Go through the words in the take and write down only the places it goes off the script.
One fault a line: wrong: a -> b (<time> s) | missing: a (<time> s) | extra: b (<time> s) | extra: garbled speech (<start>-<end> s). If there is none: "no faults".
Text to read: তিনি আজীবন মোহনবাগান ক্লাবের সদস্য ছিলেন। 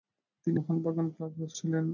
missing: আজীবন (0.6 s)
missing: সদস্য (1.5 s)